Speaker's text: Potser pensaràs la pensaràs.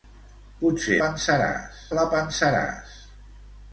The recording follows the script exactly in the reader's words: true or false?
true